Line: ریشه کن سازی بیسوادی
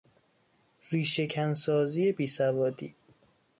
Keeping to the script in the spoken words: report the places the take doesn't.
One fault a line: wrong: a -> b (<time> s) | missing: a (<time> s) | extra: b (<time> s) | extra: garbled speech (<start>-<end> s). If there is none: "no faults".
no faults